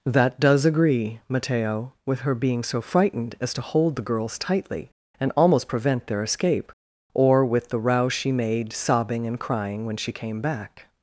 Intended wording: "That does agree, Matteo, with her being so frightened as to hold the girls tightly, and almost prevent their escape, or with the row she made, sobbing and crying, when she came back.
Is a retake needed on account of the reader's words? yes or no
no